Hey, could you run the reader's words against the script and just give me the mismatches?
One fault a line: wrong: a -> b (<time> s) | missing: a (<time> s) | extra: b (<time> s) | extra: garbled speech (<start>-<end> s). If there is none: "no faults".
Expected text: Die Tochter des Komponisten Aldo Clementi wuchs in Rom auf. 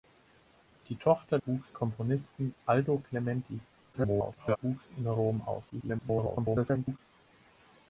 wrong: des -> wuchs (1.4 s)
extra: garbled speech (3.9-4.6 s)
extra: garbled speech (5.7-7.0 s)